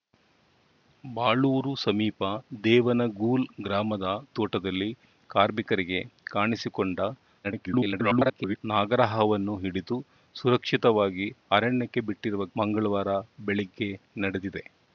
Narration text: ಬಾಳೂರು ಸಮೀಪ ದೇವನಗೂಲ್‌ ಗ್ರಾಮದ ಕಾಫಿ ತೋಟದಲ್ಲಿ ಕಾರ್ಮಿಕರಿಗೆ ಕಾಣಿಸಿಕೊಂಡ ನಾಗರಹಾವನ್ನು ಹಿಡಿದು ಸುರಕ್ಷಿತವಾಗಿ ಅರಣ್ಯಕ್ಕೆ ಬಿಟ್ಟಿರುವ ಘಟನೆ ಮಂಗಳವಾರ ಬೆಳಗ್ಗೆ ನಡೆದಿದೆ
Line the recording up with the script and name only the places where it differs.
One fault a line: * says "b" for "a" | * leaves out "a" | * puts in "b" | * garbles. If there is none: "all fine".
* leaves out "ಕಾಫಿ"
* garbles
* leaves out "ಘಟನೆ"